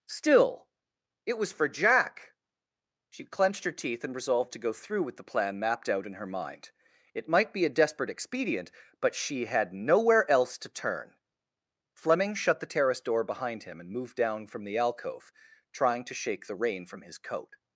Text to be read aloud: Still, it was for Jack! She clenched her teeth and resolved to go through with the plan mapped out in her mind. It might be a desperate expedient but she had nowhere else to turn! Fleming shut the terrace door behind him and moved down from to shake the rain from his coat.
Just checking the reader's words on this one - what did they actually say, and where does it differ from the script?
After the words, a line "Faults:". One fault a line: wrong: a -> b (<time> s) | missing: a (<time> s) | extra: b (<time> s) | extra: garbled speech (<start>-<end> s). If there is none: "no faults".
Still, it was for Jack! She clenched her teeth and resolved to go through with the plan mapped out in her mind. It might be a desperate expedient but she had nowhere else to turn! Fleming shut the terrace door behind him and moved down from the alcove, trying to shake the rain from his coat.
Faults:
extra: the alcove trying (14.6 s)